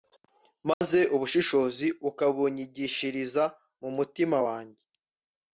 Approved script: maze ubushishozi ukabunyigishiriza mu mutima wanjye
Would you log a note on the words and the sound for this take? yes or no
yes